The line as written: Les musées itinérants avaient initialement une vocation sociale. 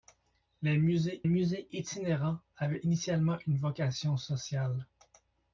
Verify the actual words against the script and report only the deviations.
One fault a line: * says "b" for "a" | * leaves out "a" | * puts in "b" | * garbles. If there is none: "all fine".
* puts in "musées"